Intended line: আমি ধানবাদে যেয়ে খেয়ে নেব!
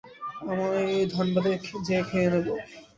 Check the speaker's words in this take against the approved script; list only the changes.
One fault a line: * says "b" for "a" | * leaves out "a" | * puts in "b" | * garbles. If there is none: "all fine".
all fine